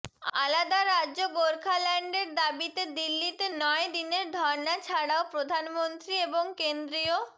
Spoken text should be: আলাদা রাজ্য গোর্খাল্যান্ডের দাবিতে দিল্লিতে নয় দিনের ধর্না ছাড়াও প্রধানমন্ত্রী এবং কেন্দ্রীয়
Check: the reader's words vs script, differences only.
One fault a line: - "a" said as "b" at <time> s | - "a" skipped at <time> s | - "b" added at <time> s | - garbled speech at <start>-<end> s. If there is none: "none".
none